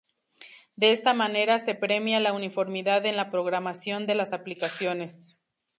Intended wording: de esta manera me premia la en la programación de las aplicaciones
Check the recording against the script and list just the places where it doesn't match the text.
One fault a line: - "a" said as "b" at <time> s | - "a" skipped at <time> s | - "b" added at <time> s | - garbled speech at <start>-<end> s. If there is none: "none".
- "me" said as "se" at 1.6 s
- "uniformidad" added at 2.3 s